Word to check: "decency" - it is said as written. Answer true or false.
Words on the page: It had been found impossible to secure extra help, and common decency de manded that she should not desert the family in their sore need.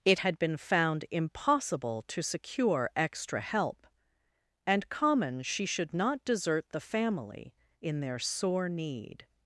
false